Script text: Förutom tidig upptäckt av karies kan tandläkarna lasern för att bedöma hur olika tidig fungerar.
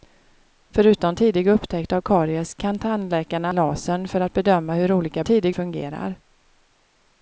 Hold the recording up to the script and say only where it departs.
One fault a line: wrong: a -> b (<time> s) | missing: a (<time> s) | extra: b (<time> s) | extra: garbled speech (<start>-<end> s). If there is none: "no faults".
no faults